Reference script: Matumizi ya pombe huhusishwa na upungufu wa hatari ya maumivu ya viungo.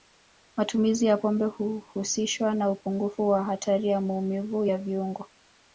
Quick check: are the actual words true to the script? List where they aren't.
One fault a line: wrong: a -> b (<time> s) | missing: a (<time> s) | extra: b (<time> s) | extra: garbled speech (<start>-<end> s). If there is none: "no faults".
no faults